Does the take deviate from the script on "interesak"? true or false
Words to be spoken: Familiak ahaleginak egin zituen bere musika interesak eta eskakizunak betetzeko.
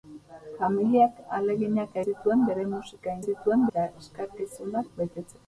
true